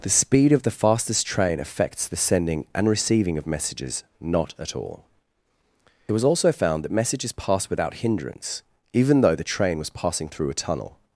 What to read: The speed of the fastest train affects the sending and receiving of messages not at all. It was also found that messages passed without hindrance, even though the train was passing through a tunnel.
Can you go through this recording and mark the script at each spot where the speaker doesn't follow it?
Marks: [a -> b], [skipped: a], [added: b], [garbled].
The speed of the fastest train affects the sending and receiving of messages not at all. It was also found that messages passed without hindrance, even though the train was passing through a tunnel.